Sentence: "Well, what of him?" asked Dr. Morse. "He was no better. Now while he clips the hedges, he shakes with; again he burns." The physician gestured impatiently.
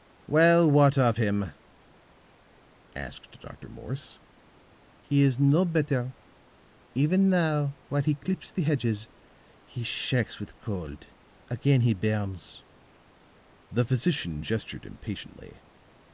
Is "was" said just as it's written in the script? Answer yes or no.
no